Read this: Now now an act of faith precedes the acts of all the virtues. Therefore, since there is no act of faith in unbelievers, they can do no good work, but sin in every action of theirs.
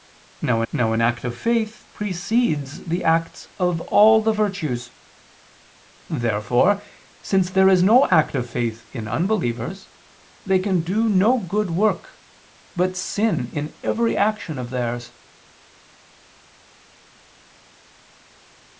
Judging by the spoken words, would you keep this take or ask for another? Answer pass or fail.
pass